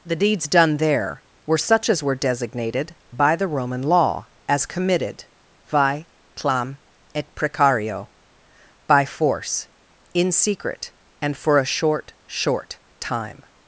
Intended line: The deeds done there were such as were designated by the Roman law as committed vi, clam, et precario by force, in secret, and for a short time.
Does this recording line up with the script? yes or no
no